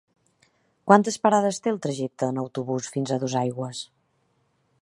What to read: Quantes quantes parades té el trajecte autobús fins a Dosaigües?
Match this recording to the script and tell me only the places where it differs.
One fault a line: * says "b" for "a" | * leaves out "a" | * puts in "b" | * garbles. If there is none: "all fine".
* leaves out "quantes"
* puts in "en"